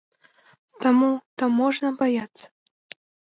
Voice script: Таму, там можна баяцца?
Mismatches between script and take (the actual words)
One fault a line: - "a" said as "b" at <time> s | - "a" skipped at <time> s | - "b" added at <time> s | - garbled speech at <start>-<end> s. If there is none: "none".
none